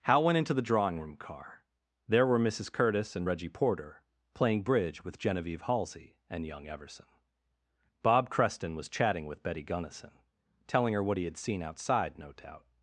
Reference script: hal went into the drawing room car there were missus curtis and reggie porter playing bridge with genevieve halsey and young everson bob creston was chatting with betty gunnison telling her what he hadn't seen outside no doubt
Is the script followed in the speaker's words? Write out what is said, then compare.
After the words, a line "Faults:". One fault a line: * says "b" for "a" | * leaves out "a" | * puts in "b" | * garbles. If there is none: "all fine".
hal went into the drawing room car there were missus curtis and reggie porter playing bridge with genevieve halsey and young everson bob creston was chatting with betty gunnison telling her what he had seen outside no doubt
Faults:
* says "had" for "hadn't"